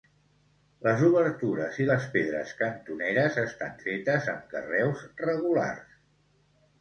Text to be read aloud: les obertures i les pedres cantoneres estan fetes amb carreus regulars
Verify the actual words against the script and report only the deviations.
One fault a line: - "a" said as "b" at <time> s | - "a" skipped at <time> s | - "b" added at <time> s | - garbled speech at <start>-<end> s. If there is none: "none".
none